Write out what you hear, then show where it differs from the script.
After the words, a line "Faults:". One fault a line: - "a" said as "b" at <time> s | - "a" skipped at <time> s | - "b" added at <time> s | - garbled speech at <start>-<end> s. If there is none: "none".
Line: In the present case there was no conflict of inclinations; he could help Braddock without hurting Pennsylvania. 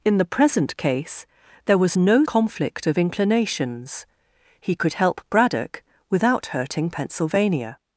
In the present case there was no conflict of inclinations; he could help Braddock without hurting Pennsylvania.
Faults:
none